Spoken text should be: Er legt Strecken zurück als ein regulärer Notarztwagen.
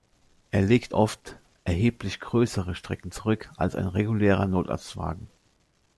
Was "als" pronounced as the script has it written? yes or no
yes